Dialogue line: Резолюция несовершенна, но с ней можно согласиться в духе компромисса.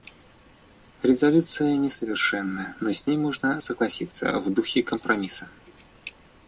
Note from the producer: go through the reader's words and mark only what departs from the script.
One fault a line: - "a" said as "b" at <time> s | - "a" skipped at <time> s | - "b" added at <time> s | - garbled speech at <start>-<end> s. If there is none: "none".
none